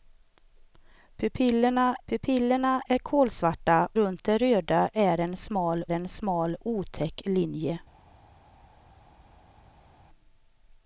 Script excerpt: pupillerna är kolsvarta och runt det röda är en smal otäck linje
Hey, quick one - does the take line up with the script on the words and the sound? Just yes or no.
no